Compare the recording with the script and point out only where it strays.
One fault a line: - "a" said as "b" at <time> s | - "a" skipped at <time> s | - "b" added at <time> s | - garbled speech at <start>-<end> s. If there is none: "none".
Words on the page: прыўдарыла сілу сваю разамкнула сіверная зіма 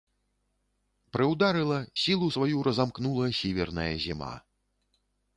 none